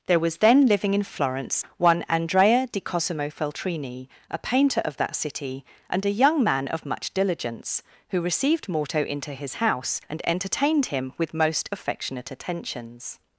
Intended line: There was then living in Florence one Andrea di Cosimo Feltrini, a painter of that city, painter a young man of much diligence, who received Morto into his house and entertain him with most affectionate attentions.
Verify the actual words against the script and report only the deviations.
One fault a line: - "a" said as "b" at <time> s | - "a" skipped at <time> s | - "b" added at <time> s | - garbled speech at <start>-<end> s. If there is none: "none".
- "painter" said as "and" at 5.9 s
- "entertain" said as "entertained" at 10.2 s